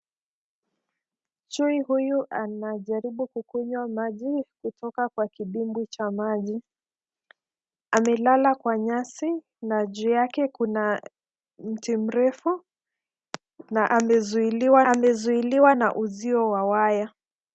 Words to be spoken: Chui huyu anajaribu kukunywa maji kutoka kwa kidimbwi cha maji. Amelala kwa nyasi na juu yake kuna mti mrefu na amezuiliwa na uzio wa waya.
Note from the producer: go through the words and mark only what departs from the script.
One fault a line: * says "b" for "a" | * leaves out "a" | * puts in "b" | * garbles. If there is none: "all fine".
* puts in "amezuiliwa"